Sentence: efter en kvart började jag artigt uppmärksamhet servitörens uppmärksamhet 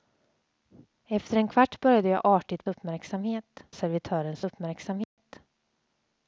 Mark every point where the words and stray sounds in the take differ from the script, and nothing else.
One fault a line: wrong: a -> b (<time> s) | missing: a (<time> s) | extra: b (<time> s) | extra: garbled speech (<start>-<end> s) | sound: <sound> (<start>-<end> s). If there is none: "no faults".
sound: dropout (5.0-5.2 s)